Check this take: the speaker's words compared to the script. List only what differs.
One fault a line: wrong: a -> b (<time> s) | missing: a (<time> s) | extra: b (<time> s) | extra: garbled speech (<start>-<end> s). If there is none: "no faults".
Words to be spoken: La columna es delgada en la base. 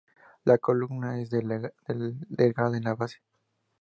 no faults